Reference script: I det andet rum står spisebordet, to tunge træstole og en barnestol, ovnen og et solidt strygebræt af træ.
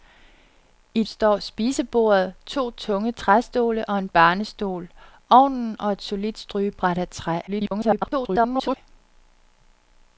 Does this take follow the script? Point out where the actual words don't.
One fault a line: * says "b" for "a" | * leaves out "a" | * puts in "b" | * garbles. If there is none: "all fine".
* leaves out "det andet rum"
* garbles